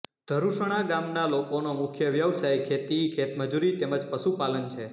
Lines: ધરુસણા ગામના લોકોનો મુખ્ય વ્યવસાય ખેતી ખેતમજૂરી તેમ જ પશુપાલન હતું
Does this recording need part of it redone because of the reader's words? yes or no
yes